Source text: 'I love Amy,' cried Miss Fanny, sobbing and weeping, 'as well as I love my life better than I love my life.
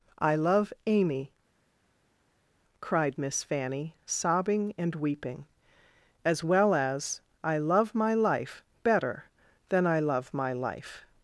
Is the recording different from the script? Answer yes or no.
no